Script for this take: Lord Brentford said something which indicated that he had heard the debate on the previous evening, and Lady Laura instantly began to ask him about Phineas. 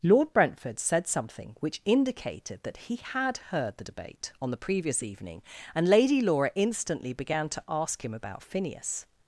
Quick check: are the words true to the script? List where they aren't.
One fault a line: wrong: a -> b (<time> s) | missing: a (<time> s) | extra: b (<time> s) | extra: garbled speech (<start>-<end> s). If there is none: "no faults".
no faults